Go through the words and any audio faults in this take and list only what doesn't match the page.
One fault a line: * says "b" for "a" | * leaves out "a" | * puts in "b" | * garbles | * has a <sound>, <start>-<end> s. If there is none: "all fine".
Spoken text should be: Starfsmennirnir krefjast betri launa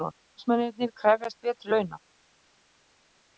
all fine